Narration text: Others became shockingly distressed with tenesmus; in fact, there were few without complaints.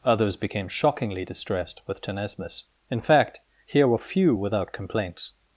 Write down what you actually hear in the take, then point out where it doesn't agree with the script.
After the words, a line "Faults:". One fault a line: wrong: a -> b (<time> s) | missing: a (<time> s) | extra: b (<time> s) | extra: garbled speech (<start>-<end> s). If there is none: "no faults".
Others became shockingly distressed with tenesmus; in fact, here were few without complaints.
Faults:
wrong: there -> here (3.6 s)